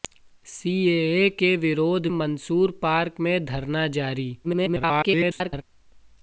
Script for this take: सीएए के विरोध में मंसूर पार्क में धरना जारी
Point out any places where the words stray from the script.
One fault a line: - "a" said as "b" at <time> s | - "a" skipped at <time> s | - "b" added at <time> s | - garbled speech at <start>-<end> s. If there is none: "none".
- "में" skipped at 2.1 s
- garbled speech at 4.4-5.6 s